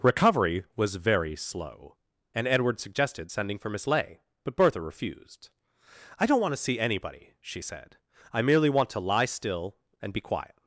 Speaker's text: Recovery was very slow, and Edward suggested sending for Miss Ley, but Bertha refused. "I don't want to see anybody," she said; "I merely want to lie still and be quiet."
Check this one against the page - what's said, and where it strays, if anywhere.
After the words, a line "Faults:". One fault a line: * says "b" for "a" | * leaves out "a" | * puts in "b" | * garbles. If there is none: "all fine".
Recovery was very slow, and Edward suggested sending for Miss Ley, but Bertha refused. "I don't want to see anybody," she said; "I merely want to lie still and be quiet."
Faults:
all fine